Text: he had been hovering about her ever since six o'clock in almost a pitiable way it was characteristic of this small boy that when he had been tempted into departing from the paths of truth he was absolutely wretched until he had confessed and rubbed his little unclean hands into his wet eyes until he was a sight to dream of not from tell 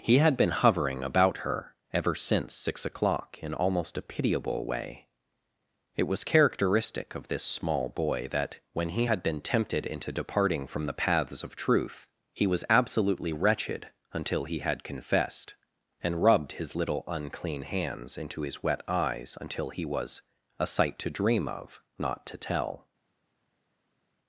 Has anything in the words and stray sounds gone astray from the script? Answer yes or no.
yes